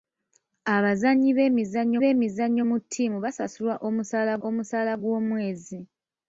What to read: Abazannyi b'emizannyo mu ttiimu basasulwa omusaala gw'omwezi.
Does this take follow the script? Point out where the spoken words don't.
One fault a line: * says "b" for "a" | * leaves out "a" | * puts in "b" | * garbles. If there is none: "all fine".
* puts in "b'emizannyo"
* puts in "omusaala"